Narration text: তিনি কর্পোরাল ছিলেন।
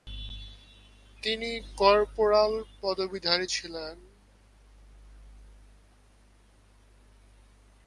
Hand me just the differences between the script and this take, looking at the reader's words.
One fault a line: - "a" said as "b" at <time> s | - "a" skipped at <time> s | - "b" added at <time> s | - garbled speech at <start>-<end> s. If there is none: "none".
- "পদবীধারী" added at 2.8 s